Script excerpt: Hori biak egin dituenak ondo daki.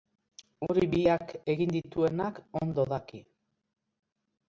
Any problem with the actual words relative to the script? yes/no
no